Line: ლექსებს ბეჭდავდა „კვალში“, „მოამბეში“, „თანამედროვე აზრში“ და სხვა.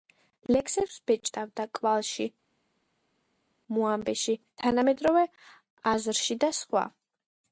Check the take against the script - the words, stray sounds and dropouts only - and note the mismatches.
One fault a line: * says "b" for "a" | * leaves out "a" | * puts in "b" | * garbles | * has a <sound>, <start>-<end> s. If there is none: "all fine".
all fine